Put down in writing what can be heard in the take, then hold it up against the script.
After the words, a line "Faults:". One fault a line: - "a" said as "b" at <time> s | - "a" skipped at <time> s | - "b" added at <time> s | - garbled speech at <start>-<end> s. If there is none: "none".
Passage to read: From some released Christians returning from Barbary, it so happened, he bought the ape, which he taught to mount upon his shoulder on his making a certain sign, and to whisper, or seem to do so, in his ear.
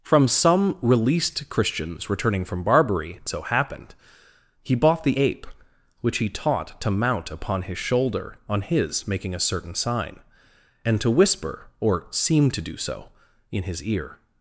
From some released Christians returning from Barbary, it so happened, he bought the ape, which he taught to mount upon his shoulder on his making a certain sign, and to whisper, or seem to do so, in his ear.
Faults:
none